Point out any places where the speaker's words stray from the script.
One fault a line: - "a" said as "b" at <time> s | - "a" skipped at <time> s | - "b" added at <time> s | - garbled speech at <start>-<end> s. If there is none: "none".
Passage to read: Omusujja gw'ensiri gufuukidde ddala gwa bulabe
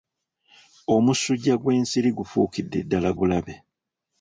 - "gwa" skipped at 3.1 s